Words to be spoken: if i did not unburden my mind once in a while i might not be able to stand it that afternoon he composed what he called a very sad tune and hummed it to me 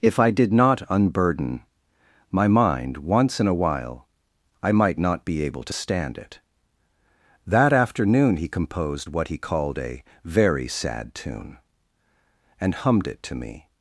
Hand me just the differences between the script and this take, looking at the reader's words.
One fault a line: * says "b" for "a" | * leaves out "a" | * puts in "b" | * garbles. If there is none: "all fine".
all fine